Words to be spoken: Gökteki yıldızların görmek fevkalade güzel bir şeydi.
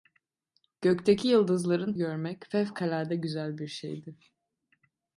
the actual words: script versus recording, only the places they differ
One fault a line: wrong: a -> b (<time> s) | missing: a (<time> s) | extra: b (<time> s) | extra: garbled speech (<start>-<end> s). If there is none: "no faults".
no faults